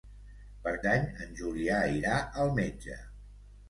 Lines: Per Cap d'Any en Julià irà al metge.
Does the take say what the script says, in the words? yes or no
no